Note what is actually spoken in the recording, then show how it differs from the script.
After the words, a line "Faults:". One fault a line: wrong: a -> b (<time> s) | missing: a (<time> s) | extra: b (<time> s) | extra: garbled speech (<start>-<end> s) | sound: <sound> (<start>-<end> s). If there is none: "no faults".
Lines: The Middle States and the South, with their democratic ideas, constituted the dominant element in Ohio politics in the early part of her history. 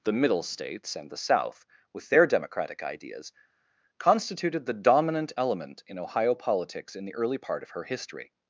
The Middle States and the South, with their democratic ideas, constituted the dominant element in Ohio politics in the early part of her history.
Faults:
no faults